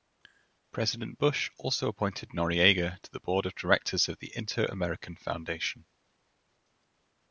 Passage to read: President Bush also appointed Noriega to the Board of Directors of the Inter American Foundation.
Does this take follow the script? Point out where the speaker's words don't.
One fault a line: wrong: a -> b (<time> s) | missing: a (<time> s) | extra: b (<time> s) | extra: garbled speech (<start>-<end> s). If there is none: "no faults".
no faults